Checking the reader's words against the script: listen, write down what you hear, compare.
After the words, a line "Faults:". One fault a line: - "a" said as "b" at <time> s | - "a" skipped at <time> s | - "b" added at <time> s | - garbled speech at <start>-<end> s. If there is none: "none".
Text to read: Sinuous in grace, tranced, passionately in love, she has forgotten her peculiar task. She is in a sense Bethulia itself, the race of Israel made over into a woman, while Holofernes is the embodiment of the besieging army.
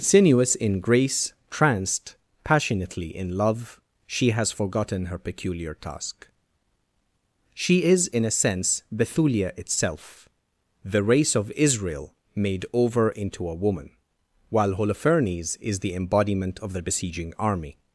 Sinuous in grace, tranced, passionately in love, she has forgotten her peculiar task. She is in a sense Bethulia itself, the race of Israel made over into a woman, while Holofernes is the embodiment of the besieging army.
Faults:
none